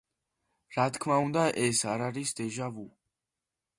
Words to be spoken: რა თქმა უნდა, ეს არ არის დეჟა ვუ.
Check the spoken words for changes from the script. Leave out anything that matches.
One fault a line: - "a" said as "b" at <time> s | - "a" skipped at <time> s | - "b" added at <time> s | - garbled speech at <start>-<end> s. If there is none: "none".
none